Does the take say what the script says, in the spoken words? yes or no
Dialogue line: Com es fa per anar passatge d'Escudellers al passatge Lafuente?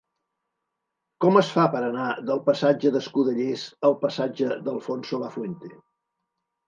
no